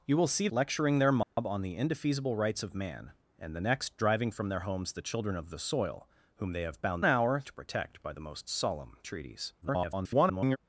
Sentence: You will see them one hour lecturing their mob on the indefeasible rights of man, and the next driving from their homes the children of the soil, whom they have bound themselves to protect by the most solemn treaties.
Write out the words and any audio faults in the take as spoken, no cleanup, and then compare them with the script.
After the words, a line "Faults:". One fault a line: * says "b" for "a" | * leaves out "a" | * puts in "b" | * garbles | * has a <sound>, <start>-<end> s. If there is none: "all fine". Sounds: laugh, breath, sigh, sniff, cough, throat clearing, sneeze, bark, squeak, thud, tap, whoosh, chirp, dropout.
You will see lecturing their mob on the indefeasible rights of man, and the next driving from their homes the children of the soil, whom they have bound hour to protect by the most solemn treaties. [garbled]
Faults:
* leaves out "them one hour"
* has a dropout, 1.2-1.4 s
* says "hour" for "themselves"
* garbles